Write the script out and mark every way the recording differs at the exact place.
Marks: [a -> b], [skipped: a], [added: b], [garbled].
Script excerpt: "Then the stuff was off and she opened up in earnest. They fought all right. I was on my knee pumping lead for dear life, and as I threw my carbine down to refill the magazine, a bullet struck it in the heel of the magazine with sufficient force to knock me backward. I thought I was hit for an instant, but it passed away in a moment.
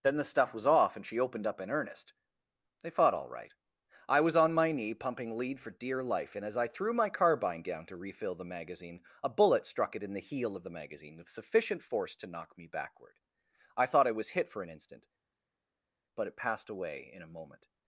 "Then the stuff was off and she opened up in earnest. They fought all right. I was on my knee pumping lead for dear life, and as I threw my carbine down to refill the magazine, a bullet struck it in the heel of the magazine with sufficient force to knock me backward. I thought I was hit for an instant, but it passed away in a moment.